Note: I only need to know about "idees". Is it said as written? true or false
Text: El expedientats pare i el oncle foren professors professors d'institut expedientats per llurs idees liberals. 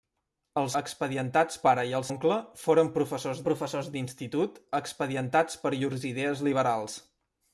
true